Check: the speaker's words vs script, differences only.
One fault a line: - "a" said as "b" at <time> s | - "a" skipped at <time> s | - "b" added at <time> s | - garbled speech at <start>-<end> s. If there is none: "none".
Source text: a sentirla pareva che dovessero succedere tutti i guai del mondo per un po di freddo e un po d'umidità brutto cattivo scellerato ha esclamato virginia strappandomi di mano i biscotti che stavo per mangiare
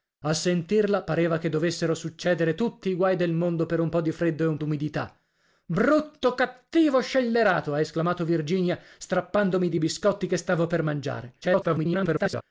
- "po" skipped at 4.6 s
- "mano" skipped at 9.8 s
- garbled speech at 11.4-12.4 s